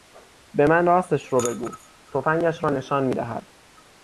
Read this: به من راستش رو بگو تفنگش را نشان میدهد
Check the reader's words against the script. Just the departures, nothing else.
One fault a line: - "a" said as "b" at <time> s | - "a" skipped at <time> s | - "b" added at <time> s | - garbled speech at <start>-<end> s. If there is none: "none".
none